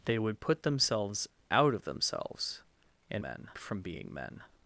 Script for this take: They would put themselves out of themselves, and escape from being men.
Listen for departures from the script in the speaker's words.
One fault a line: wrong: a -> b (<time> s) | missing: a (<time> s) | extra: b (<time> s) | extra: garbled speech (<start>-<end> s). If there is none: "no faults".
wrong: escape -> men (3.2 s)